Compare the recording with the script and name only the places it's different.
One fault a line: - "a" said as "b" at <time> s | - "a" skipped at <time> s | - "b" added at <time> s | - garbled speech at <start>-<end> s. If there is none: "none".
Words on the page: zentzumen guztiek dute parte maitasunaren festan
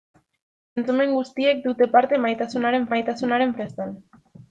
- "maitasunaren" added at 2.9 s